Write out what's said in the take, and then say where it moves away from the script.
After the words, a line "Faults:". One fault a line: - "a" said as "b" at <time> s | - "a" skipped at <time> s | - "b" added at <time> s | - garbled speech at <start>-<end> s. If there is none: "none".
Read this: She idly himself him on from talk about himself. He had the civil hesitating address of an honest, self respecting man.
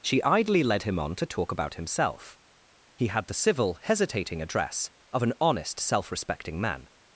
She idly led him on to talk about himself. He had the civil hesitating address of an honest, self respecting man.
Faults:
- "himself" said as "led" at 0.6 s
- "from" said as "to" at 1.1 s